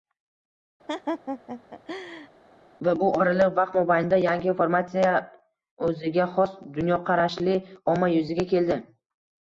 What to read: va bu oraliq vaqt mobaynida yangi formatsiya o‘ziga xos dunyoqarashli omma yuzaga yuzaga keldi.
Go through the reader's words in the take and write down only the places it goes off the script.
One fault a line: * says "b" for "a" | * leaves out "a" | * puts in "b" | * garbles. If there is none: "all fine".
* leaves out "yuzaga"